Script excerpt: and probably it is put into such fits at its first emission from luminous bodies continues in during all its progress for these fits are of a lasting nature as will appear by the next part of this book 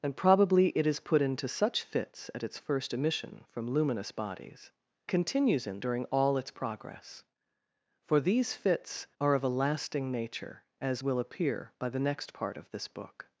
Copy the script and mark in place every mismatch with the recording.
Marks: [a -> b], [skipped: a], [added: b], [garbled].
and probably it is put into such fits at its first emission from luminous bodies continues in during all its progress for these fits are of a lasting nature as will appear by the next part of this book